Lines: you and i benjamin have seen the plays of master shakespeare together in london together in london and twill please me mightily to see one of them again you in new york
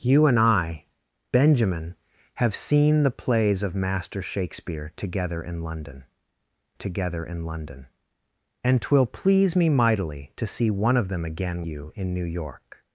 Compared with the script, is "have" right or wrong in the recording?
right